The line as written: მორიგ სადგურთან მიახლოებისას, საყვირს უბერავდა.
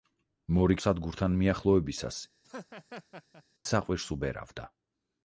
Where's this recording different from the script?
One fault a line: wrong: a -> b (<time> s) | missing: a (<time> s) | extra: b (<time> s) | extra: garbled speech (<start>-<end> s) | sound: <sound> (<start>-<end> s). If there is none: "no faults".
sound: laugh (2.4-3.4 s)